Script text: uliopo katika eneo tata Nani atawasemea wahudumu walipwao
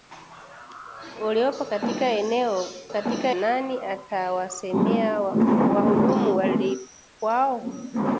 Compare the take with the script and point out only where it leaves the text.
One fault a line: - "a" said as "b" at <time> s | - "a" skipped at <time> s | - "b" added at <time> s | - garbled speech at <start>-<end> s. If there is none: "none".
- "tata" said as "katika" at 2.9 s